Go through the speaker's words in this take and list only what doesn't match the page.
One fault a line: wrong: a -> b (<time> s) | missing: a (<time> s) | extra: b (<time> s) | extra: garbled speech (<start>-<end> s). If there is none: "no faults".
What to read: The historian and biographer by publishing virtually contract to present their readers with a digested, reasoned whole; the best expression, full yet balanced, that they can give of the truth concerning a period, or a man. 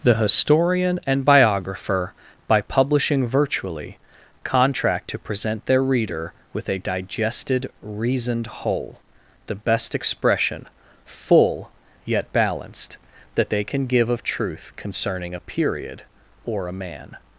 wrong: readers -> reader (5.8 s)
missing: the (14.2 s)